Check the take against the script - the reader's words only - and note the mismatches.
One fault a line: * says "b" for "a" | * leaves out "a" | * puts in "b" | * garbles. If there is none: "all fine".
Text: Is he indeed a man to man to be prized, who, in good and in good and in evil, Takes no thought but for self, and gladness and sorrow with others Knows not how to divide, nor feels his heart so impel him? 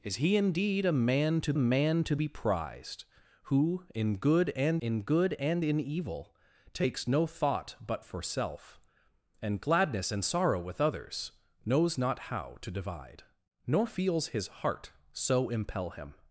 all fine